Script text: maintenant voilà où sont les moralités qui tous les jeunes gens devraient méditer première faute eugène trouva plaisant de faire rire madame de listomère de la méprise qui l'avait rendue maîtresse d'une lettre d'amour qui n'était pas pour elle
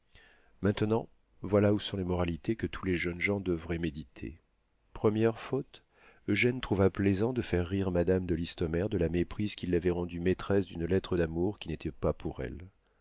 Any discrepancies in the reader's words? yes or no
yes